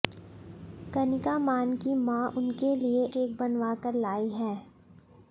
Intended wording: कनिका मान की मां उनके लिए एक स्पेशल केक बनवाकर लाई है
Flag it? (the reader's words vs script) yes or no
yes